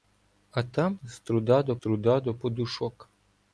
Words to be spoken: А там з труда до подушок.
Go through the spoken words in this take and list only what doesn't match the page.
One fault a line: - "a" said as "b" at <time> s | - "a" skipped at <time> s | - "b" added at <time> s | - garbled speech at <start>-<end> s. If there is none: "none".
- "труда до" added at 1.8 s